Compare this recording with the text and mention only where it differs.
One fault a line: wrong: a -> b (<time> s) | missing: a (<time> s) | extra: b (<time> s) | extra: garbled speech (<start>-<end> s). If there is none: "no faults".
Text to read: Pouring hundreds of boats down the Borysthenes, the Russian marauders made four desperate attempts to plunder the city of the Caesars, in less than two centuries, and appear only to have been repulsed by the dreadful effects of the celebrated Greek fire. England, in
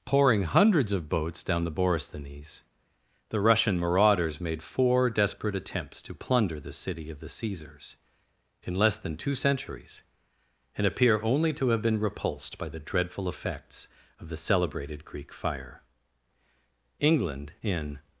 no faults